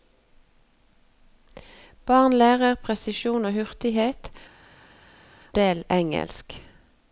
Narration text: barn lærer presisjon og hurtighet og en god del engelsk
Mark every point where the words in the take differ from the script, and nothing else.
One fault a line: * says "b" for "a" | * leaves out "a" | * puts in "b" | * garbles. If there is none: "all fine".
* leaves out "og en god"